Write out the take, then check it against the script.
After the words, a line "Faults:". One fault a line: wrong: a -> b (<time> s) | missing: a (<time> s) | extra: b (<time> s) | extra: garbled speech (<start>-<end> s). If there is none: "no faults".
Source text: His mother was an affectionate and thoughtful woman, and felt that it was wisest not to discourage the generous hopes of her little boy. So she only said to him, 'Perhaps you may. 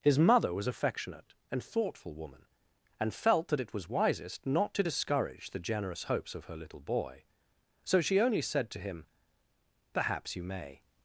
His mother was affectionate and thoughtful woman, and felt that it was wisest not to discourage the generous hopes of her little boy. So she only said to him, 'Perhaps you may.
Faults:
missing: an (0.7 s)